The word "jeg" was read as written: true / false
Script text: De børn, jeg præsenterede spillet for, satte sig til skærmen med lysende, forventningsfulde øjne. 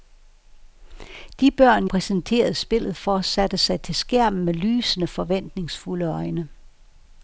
false